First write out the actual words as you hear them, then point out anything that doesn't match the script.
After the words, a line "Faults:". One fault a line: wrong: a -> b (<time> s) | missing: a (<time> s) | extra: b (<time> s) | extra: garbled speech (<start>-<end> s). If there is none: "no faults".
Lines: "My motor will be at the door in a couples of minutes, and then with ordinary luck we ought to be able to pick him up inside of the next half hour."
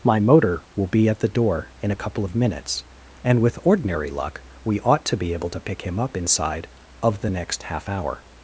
"My motor will be at the door in a couple of minutes, and with ordinary luck we ought to be able to pick him up inside of the next half hour."
Faults:
wrong: couples -> couple (2.0 s)
missing: then (3.4 s)